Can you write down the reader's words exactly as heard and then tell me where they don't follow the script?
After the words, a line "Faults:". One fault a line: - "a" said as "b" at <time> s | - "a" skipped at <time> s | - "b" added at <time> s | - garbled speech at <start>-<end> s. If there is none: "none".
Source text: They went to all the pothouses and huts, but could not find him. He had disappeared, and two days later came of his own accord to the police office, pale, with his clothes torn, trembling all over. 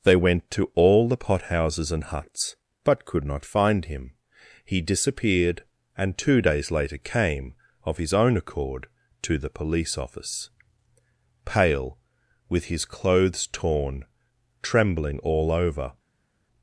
They went to all the pothouses and huts, but could not find him. He disappeared, and two days later came of his own accord to the police office, pale, with his clothes torn, trembling all over.
Faults:
- "had" skipped at 4.8 s